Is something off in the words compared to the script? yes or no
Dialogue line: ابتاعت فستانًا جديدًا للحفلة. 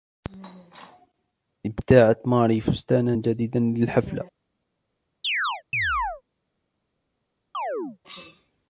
yes